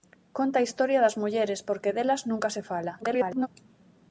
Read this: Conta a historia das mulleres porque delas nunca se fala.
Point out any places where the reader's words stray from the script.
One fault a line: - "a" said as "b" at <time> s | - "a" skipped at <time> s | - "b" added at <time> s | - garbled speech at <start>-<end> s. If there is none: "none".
- garbled speech at 3.0-3.5 s